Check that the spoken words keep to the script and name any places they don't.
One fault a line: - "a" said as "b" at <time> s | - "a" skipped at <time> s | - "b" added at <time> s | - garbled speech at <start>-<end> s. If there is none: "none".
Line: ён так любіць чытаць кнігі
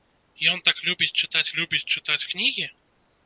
- "любіць чытаць" added at 1.6 s